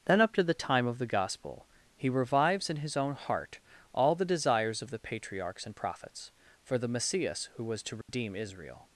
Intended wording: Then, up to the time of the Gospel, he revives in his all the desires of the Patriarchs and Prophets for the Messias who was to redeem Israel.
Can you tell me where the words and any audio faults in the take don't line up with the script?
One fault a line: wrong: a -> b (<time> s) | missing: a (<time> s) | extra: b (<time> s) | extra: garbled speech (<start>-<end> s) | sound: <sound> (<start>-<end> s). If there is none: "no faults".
extra: own heart (3.0 s)
sound: dropout (8.0-8.1 s)